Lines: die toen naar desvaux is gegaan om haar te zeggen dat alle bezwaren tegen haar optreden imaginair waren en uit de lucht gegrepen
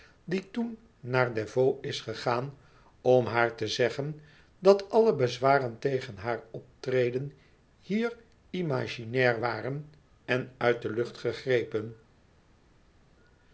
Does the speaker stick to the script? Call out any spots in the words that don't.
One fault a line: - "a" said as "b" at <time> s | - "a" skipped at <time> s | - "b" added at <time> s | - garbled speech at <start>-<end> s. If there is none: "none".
- "hier" added at 7.8 s